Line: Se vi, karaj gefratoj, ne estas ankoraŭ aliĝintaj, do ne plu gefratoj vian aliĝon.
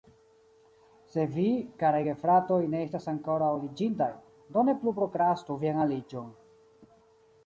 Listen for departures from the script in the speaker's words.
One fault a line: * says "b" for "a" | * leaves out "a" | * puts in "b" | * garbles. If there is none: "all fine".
* says "prokrastu" for "gefratoj"